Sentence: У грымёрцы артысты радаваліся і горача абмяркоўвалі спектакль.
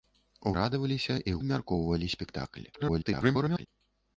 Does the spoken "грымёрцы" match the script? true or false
false